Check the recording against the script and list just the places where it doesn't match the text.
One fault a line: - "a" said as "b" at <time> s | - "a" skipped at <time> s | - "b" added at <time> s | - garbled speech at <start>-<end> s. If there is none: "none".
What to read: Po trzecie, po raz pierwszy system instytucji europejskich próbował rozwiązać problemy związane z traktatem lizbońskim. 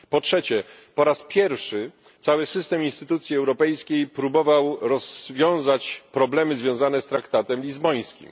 - "cały" added at 2.2 s